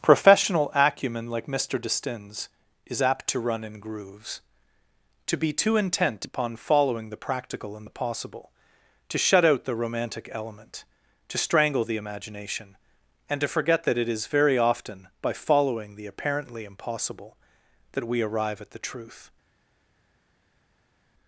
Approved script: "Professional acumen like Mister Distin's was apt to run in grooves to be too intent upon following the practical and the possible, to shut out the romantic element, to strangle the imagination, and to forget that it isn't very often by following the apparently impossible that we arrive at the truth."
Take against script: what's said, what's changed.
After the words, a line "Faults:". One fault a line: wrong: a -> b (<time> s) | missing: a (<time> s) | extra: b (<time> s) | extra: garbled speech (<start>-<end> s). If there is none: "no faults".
"Professional acumen like Mister Distin's is apt to run in grooves to be too intent upon following the practical and the possible, to shut out the romantic element, to strangle the imagination, and to forget that it is very often by following the apparently impossible that we arrive at the truth."
Faults:
wrong: was -> is (2.9 s)
wrong: isn't -> is (14.1 s)